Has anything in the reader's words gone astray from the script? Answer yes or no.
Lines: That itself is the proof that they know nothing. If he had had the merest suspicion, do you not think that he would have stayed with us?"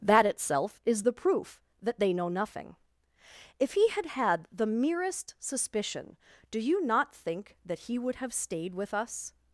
no